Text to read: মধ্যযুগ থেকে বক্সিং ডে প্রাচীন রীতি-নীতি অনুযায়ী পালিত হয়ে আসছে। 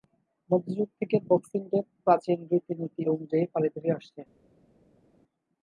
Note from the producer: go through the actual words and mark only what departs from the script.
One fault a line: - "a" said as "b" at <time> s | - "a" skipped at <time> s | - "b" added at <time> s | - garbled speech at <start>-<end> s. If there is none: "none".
none